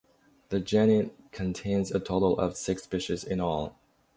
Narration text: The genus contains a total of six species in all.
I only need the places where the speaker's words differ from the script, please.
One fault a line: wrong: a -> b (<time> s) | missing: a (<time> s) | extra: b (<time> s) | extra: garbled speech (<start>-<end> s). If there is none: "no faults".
no faults